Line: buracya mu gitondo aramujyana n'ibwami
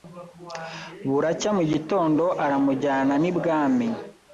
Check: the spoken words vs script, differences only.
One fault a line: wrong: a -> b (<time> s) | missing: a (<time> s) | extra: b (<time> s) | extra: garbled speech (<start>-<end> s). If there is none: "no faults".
no faults